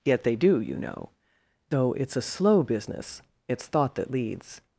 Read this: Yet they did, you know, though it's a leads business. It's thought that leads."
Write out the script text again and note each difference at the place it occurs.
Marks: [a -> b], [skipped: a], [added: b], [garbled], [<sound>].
Yet they [did, -> do] you know, though it's a [leads -> slow] business. It's thought that leads."